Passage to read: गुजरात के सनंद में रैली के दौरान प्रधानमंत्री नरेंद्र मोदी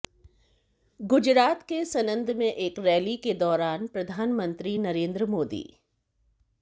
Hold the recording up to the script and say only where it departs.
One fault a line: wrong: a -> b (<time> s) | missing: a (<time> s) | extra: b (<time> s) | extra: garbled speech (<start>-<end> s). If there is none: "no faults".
extra: एक (2.5 s)